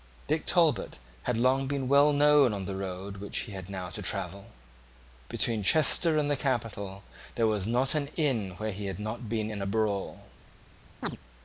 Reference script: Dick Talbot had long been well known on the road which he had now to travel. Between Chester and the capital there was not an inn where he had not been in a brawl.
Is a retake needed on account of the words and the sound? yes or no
yes